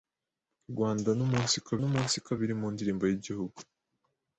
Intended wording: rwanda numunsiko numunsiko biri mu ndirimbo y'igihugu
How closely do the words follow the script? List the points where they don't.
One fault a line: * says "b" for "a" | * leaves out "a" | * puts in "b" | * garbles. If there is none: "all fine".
all fine